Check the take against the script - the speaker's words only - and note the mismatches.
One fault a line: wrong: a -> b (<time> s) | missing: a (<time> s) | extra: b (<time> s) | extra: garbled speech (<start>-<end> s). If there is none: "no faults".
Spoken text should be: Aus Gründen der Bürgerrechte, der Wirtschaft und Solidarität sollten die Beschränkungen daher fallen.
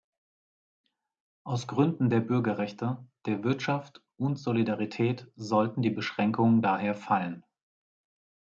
no faults